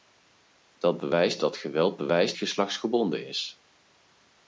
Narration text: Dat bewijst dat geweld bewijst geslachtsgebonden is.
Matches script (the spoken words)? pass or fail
pass